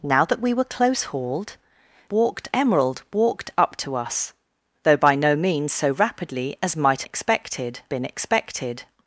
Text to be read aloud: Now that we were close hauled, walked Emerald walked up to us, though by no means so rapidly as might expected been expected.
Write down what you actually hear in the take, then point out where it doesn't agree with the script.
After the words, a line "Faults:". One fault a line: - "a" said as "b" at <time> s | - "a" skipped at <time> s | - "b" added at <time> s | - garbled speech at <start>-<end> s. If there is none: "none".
Now that we were close hauled, walked Emerald walked up to us, though by no means so rapidly as might expected been expected.
Faults:
none